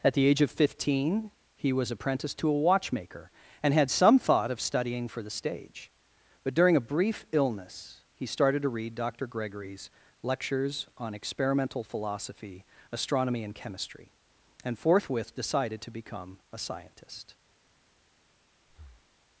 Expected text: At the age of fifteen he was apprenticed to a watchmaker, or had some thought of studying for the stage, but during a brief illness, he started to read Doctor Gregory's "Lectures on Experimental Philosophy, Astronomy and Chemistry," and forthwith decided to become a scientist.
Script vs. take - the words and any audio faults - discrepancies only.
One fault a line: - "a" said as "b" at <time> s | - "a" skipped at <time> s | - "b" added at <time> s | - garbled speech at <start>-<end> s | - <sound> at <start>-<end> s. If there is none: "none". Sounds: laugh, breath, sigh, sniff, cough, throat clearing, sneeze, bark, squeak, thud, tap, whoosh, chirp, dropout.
- "or" said as "and" at 3.6 s
- breath at 18.7-19.2 s